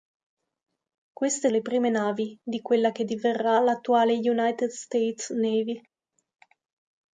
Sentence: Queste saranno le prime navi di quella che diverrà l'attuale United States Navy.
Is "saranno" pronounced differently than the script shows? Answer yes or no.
yes